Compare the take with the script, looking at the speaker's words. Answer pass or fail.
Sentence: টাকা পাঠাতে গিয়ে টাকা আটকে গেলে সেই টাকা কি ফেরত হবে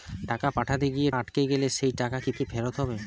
fail